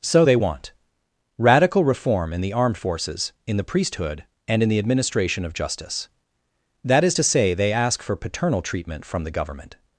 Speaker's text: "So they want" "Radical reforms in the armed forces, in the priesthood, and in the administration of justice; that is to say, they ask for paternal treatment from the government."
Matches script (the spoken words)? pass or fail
fail